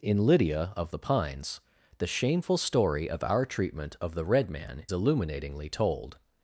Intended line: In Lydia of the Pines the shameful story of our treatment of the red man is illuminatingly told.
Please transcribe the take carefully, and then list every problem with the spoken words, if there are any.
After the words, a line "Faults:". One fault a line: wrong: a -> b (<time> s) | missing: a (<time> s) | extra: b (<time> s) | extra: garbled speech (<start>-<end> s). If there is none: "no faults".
In Lydia of the Pines the shameful story of our treatment of the red man illuminatingly told.
Faults:
missing: is (4.9 s)